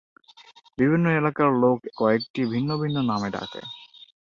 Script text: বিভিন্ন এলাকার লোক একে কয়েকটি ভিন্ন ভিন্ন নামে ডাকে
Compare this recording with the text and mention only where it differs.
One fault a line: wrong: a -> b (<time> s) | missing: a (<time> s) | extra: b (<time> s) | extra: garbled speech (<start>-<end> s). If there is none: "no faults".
missing: একে (1.8 s)